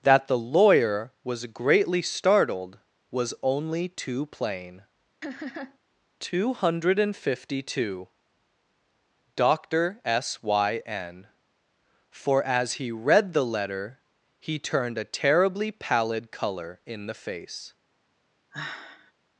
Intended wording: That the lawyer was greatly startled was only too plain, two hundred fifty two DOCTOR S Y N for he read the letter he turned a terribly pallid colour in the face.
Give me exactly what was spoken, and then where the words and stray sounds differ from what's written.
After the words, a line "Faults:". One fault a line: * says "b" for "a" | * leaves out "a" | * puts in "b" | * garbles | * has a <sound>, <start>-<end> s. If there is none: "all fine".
That the lawyer was greatly startled was only too plain, two hundred fifty two DOCTOR S Y N for as he read the letter he turned a terribly pallid colour in the face.
Faults:
* has a laugh, 5.2-5.8 s
* puts in "as"
* has a sigh, 18.5-19.1 s